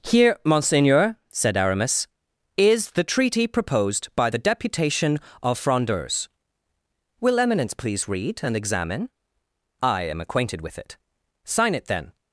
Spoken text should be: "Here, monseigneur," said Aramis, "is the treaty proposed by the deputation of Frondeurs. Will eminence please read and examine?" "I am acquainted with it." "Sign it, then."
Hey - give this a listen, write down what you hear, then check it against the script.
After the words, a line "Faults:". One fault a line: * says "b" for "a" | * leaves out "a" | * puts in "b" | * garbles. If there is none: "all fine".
"Here, monseigneur," said Aramis, "is the treaty proposed by the deputation of Frondeurs. Will eminence please read and examine?" "I am acquainted with it." "Sign it, then."
Faults:
all fine